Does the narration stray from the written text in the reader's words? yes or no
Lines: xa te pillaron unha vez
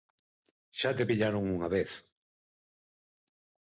no